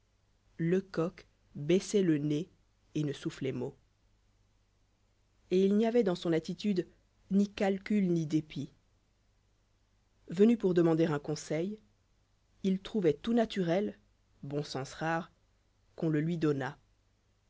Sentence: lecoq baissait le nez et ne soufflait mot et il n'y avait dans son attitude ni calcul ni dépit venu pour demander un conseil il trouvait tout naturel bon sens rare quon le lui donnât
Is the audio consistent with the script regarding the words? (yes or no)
yes